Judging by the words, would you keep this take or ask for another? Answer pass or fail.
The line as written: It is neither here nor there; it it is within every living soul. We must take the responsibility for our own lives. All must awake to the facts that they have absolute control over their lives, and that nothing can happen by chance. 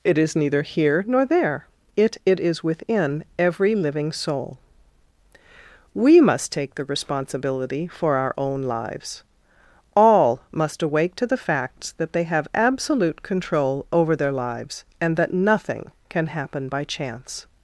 pass